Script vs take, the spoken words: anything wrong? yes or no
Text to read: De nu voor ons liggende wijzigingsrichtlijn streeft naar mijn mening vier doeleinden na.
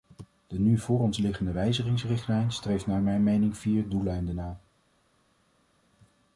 no